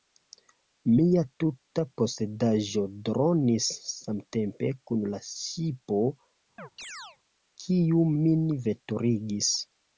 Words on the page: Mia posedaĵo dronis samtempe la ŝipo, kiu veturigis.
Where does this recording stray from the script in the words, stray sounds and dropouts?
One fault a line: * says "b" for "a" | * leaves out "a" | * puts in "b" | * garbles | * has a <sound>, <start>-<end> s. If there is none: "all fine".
* puts in "tuta"
* puts in "kun"
* has a chirp, 6.6-7.2 s
* puts in "min"